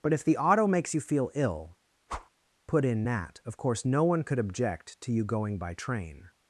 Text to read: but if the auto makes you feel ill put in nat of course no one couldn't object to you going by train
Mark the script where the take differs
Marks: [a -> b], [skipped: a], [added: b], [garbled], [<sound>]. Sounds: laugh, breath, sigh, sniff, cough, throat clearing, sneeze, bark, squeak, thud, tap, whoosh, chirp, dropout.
but if the auto makes you feel ill [whoosh] put in nat of course no one [couldn't -> could] object to you going by train